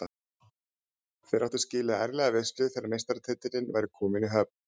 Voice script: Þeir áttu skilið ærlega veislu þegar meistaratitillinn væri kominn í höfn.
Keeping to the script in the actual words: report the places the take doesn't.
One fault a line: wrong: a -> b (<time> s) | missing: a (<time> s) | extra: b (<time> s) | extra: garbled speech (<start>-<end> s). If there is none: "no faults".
no faults